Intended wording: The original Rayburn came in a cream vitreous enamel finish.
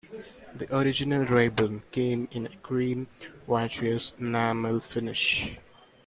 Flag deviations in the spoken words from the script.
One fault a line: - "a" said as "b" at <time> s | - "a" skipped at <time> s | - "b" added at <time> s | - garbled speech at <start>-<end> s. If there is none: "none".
none